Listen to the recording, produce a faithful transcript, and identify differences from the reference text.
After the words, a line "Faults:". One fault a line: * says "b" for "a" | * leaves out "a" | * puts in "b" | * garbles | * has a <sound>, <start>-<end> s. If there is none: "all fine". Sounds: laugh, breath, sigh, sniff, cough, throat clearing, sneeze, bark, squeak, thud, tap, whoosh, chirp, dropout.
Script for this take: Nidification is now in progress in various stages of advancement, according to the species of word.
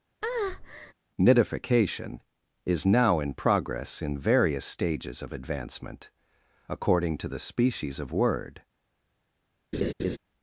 Nidification is now in progress in various stages of advancement, according to the species of word.
Faults:
* has a breath, 0.2-0.9 s
* has a laugh, 9.7-10.2 s